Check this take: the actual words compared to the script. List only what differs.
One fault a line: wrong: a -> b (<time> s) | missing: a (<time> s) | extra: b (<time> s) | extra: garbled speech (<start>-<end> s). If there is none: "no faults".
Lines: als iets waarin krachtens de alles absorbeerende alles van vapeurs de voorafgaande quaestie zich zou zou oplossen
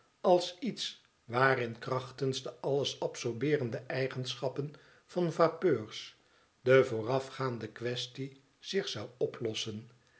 wrong: alles -> eigenschappen (3.8 s)
missing: zou (9.1 s)